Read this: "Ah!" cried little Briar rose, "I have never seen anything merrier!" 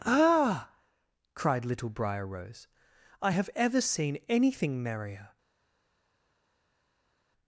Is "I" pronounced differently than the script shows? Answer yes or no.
no